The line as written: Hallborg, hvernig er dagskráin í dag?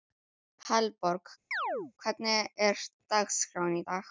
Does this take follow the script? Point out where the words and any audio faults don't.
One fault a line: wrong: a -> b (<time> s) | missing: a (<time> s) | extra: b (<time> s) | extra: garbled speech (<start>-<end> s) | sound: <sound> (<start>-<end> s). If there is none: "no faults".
sound: chirp (1.5-1.9 s)